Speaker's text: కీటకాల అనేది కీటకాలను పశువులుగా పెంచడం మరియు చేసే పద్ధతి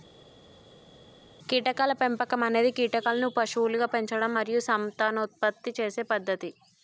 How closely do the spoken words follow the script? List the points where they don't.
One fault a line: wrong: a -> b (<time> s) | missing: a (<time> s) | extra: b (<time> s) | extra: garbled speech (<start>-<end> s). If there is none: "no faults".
extra: పెంపకం (2.0 s)
extra: సంతానోత్పత్తి (4.7 s)